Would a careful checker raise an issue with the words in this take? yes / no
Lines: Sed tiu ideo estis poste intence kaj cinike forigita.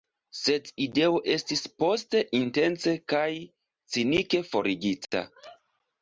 yes